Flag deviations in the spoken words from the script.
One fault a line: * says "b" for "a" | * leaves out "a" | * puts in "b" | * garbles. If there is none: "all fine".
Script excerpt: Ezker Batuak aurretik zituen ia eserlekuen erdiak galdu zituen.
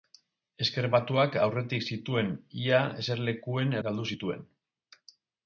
* leaves out "erdiak"